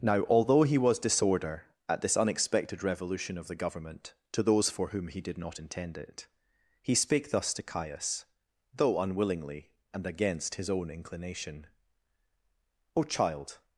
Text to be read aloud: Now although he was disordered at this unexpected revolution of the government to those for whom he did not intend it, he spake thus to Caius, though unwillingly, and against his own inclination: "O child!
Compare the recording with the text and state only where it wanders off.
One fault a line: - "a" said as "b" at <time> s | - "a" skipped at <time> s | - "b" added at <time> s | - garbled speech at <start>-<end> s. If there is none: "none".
- "disordered" said as "disorder" at 1.0 s